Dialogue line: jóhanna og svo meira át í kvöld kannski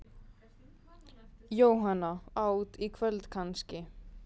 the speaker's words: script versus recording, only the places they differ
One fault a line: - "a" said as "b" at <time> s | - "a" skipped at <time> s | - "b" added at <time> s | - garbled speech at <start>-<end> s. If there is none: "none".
- "og svo meira" skipped at 2.1 s